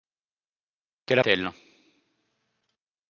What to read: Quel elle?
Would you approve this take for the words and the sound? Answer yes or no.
yes